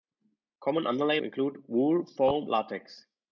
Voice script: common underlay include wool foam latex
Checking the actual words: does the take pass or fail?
pass